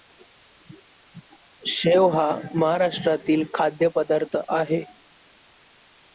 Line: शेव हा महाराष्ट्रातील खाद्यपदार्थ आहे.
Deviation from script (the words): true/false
false